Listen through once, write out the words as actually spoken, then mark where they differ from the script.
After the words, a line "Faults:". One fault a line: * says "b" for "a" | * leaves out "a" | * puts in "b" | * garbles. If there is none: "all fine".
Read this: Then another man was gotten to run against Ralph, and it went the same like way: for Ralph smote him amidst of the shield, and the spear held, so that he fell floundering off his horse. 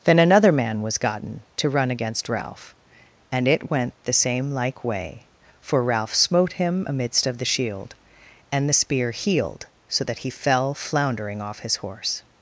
Then another man was gotten to run against Ralph, and it went the same like way: for Ralph smote him amidst of the shield, and the spear healed, so that he fell floundering off his horse.
Faults:
* says "healed" for "held"